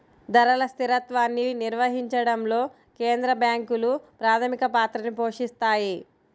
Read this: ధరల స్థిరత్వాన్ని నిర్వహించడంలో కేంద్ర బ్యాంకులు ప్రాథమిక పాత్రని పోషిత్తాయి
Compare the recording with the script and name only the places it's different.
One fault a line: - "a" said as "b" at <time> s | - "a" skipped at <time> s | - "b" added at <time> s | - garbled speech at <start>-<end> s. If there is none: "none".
none